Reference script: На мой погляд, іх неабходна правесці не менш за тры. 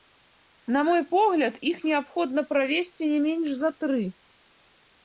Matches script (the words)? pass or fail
pass